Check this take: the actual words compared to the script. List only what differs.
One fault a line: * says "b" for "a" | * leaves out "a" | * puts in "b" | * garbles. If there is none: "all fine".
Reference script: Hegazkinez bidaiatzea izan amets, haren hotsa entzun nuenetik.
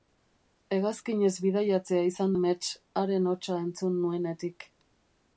all fine